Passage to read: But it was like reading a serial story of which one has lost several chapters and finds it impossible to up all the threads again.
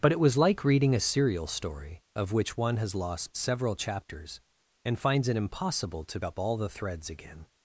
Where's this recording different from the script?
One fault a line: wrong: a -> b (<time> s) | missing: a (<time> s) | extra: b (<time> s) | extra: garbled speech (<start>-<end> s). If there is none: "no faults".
no faults